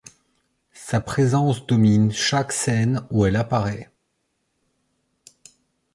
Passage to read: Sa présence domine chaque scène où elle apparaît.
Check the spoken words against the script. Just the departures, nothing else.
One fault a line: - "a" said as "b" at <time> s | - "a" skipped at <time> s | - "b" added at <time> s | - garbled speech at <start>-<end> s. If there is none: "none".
none